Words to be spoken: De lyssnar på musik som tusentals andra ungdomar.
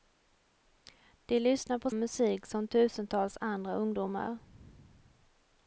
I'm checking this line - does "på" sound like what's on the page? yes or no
yes